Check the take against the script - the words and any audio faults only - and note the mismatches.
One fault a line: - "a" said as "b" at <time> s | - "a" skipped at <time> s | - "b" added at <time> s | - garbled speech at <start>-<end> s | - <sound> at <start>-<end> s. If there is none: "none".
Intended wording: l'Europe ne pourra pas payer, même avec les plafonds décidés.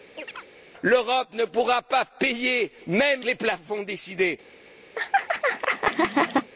- chirp at 0.1-0.4 s
- "avec" skipped at 3.2 s
- laugh at 5.0-6.5 s